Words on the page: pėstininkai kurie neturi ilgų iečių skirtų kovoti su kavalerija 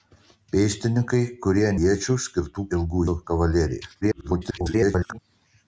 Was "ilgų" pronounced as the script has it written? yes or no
no